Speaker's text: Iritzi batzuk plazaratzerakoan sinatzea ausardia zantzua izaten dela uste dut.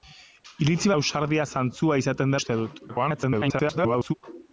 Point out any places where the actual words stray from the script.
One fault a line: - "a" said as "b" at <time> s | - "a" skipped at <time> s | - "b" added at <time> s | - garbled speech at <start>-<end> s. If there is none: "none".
- "batzuk plazaratzerakoan sinatzea" skipped at 0.9 s
- "dela" skipped at 2.4 s
- garbled speech at 2.9-4.1 s